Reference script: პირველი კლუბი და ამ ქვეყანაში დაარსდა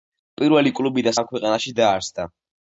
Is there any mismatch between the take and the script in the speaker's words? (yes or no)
no